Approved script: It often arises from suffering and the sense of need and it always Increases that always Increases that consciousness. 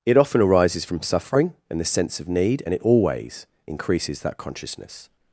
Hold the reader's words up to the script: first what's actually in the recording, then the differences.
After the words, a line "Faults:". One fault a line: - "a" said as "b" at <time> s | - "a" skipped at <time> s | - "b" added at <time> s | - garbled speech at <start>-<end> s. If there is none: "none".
It often arises from suffering and the sense of need and it always Increases that consciousness.
Faults:
- "always Increases that" skipped at 4.4 s